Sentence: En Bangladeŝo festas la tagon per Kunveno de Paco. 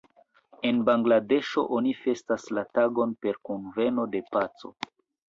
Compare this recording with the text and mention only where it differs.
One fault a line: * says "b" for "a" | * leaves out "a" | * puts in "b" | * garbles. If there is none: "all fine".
* puts in "oni"